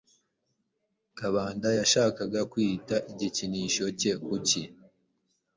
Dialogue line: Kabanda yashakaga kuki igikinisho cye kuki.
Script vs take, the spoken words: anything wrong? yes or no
yes